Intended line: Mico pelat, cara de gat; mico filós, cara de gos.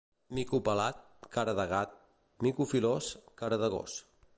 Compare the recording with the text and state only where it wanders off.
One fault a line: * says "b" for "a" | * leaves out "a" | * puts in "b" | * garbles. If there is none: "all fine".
all fine